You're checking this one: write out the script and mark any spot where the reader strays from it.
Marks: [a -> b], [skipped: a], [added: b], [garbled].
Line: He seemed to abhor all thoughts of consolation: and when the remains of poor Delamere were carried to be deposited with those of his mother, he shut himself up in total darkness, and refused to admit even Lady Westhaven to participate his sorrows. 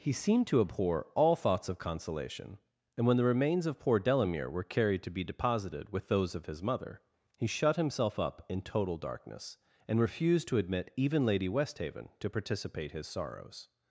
He seemed to abhor all thoughts of consolation: and when the remains of poor Delamere were carried to be deposited with those of his mother, he shut himself up in total darkness, and refused to admit even Lady Westhaven to participate his sorrows.